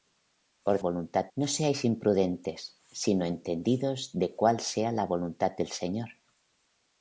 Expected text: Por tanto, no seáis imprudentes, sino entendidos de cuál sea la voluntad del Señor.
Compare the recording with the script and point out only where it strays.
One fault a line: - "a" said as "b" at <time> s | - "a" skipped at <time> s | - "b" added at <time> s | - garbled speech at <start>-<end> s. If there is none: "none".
- "tanto" said as "voluntad" at 0.8 s